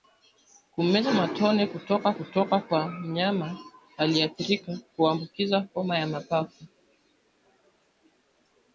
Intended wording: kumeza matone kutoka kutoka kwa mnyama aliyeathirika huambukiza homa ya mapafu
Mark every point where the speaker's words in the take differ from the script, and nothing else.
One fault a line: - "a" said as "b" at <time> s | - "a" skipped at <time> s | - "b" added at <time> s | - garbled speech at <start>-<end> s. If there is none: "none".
none